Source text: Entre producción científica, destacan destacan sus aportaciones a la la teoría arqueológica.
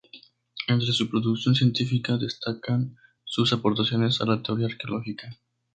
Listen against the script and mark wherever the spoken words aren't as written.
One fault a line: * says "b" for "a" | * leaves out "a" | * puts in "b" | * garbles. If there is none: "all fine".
* puts in "su"
* leaves out "destacan"
* leaves out "la"